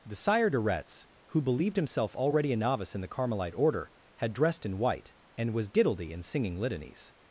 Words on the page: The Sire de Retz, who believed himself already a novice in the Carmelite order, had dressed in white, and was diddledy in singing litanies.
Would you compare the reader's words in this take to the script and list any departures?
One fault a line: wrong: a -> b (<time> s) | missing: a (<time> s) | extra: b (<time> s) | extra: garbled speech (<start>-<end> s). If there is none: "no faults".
no faults